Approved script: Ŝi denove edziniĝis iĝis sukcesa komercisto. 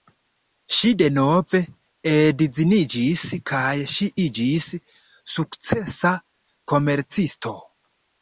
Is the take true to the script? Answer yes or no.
no